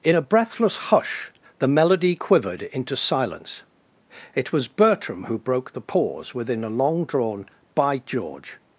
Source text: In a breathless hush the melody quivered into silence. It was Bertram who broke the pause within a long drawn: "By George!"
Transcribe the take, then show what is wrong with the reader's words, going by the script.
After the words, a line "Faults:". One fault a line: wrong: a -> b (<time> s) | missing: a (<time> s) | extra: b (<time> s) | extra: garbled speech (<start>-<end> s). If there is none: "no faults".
In a breathless hush the melody quivered into silence. It was Bertram who broke the pause within a long drawn: "By George!"
Faults:
no faults